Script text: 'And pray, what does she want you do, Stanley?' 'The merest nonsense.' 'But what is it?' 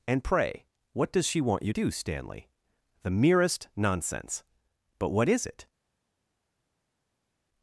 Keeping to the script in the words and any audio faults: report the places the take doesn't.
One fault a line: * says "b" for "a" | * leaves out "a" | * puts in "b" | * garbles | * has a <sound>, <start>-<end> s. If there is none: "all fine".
all fine